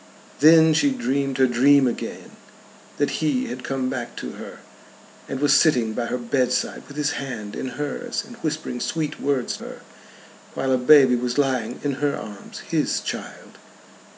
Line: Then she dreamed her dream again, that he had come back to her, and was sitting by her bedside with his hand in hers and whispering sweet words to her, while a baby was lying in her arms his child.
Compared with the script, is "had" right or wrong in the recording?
right